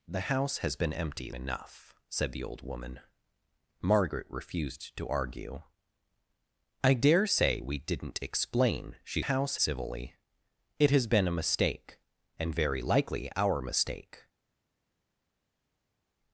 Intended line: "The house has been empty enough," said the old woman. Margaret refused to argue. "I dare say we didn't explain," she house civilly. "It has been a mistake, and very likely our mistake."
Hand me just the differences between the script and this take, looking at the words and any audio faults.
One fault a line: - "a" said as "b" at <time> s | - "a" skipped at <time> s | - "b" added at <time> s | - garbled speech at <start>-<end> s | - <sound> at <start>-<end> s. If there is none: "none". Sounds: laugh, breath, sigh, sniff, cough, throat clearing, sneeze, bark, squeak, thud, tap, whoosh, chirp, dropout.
none